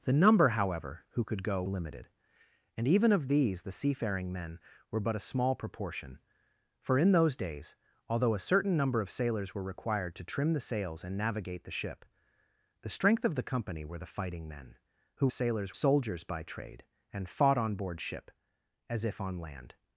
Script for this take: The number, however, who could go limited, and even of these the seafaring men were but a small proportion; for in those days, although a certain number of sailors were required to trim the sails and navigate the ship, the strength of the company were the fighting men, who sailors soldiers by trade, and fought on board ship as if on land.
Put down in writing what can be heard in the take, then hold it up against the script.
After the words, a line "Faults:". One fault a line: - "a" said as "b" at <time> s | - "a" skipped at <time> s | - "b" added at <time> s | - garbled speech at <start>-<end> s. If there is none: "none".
The number, however, who could go limited, and even of these the seafaring men were but a small proportion; for in those days, although a certain number of sailors were required to trim the sails and navigate the ship, the strength of the company were the fighting men, who sailors soldiers by trade, and fought on board ship as if on land.
Faults:
none